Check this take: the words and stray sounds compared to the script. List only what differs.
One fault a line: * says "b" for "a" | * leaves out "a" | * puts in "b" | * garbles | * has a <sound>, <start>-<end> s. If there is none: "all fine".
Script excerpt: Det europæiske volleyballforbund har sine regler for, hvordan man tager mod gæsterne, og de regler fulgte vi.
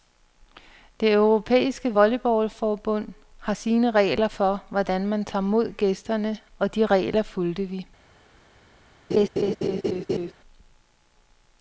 * has a laugh, 9.1-10.3 s